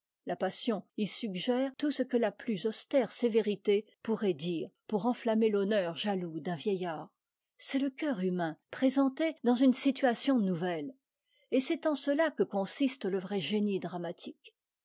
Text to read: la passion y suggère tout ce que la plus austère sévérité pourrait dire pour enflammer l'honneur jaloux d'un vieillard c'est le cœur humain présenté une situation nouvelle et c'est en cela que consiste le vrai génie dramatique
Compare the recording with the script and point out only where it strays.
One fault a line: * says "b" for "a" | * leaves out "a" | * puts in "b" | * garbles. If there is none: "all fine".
* puts in "dans"